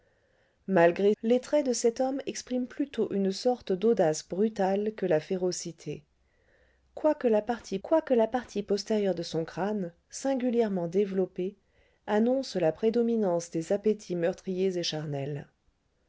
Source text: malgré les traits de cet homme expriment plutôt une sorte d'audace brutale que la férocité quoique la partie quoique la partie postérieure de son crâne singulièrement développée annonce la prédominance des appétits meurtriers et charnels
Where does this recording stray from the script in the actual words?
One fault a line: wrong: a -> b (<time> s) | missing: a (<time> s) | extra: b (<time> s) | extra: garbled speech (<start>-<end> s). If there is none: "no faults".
no faults